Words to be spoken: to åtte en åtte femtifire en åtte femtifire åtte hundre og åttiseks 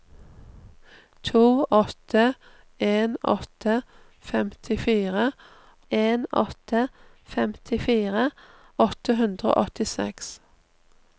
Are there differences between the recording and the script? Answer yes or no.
no